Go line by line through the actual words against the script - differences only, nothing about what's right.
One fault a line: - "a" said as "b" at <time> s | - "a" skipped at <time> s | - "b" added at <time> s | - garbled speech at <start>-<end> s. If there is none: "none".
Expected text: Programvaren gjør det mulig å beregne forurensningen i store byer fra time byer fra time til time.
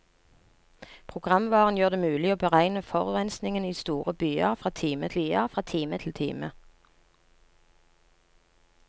none